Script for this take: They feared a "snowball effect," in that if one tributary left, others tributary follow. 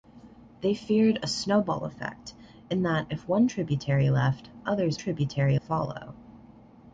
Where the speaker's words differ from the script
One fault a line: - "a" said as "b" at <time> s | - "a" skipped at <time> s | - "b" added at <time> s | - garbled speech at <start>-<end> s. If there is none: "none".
none